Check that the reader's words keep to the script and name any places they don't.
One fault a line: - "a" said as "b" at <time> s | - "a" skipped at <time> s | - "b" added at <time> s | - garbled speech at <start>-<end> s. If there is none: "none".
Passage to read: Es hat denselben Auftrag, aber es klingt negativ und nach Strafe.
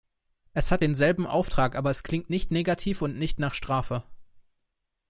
- "nicht" added at 2.3 s
- "nicht" added at 3.2 s